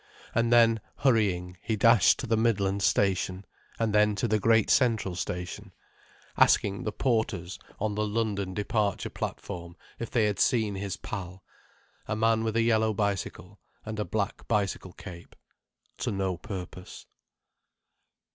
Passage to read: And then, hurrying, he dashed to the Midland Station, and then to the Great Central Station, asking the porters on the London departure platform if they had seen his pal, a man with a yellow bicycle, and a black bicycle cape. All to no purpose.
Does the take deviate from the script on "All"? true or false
true